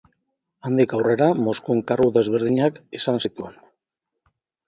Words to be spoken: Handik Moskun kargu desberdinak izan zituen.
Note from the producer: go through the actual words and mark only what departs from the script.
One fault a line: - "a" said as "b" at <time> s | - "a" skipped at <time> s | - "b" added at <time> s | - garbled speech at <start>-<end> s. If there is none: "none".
- "aurrera" added at 1.0 s